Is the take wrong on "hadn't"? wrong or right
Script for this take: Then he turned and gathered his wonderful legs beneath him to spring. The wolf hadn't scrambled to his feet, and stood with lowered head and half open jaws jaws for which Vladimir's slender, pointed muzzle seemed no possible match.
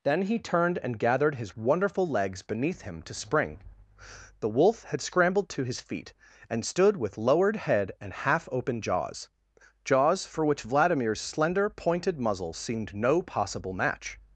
wrong